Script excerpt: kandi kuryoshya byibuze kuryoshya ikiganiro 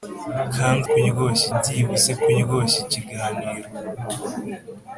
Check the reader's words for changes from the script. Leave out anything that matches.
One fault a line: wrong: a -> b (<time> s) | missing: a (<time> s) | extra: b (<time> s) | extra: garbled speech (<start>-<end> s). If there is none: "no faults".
no faults